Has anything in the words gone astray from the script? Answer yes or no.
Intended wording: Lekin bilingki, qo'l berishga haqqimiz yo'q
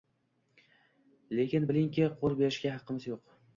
no